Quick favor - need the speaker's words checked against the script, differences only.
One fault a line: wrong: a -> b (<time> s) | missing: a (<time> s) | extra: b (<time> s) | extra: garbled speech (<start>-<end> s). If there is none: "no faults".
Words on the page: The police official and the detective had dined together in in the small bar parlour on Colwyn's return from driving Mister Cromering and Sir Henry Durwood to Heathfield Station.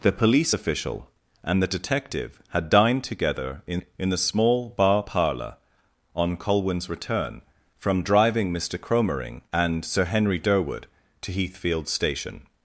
no faults